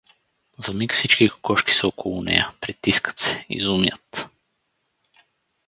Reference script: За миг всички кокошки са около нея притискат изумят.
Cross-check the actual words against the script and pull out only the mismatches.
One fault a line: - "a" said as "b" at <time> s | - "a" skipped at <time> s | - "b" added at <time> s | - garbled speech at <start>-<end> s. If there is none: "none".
- "се" added at 3.2 s